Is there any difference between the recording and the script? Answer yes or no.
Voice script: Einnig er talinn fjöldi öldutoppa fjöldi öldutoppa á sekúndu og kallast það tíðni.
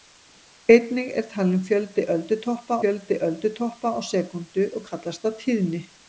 no